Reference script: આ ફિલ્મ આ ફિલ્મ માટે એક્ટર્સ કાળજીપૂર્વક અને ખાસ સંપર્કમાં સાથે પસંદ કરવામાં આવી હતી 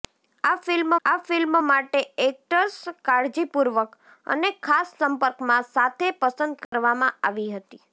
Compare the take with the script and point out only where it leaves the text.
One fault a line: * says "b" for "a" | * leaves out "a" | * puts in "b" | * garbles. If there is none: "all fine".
all fine